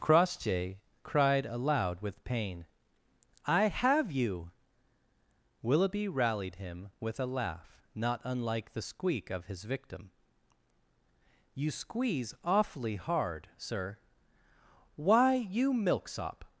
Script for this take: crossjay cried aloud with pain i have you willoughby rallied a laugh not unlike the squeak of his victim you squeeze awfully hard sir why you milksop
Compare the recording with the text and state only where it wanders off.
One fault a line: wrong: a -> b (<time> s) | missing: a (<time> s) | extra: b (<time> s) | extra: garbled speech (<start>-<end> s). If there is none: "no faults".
extra: him with (6.5 s)